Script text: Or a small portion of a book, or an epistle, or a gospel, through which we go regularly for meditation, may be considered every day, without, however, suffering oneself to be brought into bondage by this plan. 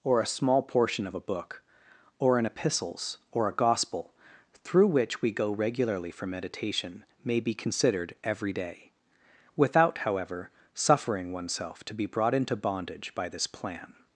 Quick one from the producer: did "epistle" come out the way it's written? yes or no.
no